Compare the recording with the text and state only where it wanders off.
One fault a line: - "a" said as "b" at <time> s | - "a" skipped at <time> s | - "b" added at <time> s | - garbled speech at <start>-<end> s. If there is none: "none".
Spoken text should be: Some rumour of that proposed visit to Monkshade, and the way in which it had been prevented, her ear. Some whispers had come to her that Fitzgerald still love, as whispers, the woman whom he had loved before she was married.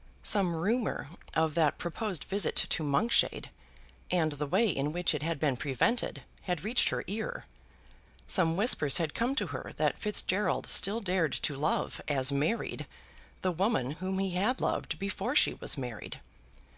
- "had reached" added at 6.4 s
- "dared to" added at 11.0 s
- "whispers" said as "married" at 12.3 s